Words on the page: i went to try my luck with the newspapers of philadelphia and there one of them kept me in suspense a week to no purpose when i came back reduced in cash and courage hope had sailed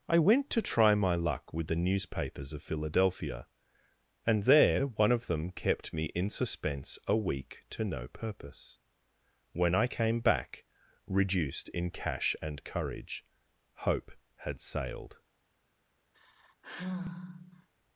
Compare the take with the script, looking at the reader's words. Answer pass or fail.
pass